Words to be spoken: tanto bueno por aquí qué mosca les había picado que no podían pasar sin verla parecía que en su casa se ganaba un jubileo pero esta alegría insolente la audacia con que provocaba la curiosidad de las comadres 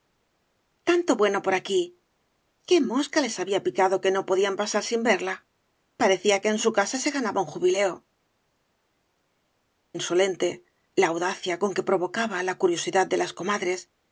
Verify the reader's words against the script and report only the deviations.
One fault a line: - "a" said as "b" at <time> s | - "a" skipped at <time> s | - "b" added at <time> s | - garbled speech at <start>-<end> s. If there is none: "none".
- "pero esta alegría" skipped at 8.1 s